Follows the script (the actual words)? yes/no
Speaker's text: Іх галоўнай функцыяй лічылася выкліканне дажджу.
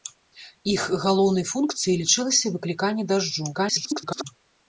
no